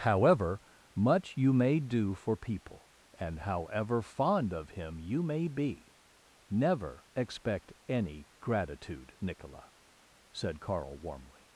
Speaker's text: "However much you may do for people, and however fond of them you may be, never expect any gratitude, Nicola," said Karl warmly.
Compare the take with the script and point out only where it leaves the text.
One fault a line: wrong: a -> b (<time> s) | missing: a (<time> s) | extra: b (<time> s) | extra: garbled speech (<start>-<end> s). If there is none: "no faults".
wrong: them -> him (4.7 s)